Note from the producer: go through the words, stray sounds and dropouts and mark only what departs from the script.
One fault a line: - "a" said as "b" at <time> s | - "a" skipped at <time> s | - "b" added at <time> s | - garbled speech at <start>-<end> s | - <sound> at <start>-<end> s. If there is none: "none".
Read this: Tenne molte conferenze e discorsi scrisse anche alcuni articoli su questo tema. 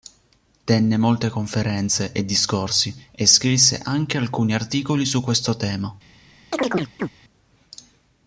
- "e" added at 3.1 s
- chirp at 6.5-7.1 s